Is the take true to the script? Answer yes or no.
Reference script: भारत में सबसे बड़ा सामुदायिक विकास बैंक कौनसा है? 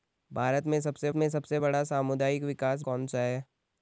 no